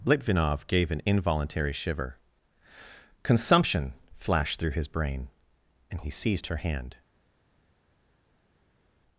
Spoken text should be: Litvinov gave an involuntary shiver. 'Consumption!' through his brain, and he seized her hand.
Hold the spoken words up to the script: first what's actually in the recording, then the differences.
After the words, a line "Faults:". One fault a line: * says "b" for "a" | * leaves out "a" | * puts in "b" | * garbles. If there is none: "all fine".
Litvinov gave an involuntary shiver. 'Consumption!' flashed through his brain, and he seized her hand.
Faults:
* puts in "flashed"